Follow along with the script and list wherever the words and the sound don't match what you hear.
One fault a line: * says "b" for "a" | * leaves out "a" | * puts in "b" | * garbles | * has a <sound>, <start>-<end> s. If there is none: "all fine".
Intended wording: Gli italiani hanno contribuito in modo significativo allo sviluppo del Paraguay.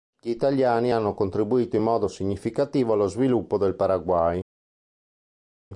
all fine